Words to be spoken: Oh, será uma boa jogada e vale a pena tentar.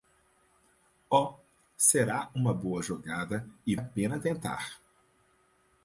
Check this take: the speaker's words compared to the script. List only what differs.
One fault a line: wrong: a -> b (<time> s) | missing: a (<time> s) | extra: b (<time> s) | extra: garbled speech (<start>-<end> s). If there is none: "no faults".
missing: vale (3.8 s)